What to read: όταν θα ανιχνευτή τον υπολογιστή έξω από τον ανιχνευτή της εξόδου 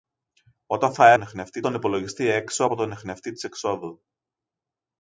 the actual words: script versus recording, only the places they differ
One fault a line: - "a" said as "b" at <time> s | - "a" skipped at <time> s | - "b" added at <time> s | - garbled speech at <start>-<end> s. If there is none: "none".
none